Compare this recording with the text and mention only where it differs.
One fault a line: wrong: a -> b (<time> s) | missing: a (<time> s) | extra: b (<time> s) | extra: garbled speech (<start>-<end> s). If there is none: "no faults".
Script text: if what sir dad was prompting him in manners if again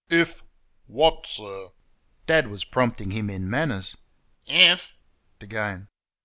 no faults